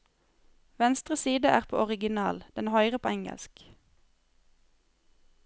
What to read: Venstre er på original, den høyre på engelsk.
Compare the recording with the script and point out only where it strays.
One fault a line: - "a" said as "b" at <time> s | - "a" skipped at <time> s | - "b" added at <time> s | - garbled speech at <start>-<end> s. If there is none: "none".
- "side" added at 1.1 s